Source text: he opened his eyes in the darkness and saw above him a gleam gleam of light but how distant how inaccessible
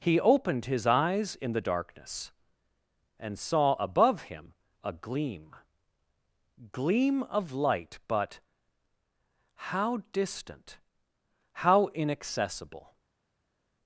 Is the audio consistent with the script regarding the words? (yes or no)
yes